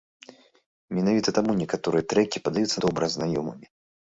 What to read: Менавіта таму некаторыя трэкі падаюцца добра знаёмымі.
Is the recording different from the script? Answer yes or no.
no